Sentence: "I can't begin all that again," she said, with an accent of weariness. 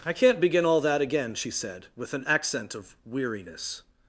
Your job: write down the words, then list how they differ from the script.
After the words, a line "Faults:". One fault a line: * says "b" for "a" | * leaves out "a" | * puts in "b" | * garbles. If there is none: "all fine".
"I can't begin all that again," she said, with an accent of weariness.
Faults:
all fine